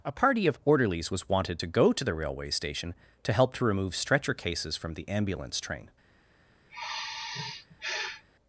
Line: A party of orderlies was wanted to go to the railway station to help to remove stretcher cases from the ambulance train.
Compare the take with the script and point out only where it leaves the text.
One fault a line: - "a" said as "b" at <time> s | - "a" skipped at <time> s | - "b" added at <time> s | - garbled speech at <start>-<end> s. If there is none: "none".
none